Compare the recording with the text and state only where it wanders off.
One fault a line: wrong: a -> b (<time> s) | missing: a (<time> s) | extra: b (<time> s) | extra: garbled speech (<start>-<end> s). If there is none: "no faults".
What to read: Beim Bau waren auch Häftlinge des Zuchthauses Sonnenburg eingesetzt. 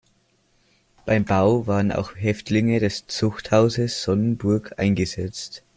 no faults